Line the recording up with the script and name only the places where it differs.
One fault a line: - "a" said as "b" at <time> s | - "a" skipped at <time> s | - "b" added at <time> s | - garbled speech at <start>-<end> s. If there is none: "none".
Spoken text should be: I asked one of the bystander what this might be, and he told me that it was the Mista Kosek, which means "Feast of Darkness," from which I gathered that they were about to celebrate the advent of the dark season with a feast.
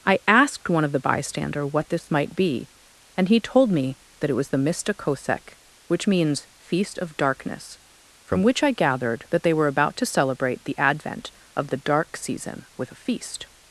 none